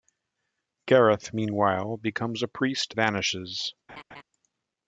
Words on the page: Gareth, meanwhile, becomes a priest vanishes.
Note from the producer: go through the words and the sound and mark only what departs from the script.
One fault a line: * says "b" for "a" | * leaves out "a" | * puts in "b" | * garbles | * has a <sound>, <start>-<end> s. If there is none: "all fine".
* has a laugh, 3.9-4.2 s